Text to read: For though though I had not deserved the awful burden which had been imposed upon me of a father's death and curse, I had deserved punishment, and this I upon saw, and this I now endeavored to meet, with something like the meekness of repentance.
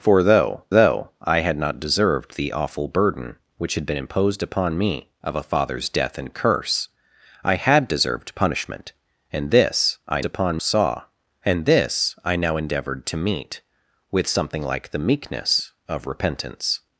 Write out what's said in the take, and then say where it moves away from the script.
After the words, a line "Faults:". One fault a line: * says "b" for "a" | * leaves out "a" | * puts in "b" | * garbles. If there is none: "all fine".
For though though I had not deserved the awful burden which had been imposed upon me of a father's death and curse, I had deserved punishment, and this I upon saw, and this I now endeavored to meet, with something like the meekness of repentance.
Faults:
all fine